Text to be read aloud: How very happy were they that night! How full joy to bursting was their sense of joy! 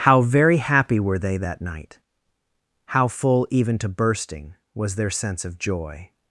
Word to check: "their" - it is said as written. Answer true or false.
true